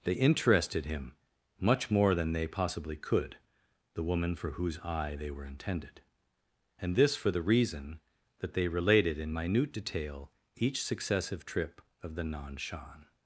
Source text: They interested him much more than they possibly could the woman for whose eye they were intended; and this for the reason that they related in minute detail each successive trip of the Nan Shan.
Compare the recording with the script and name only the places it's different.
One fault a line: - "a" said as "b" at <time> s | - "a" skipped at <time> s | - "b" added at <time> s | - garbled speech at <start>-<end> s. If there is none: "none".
none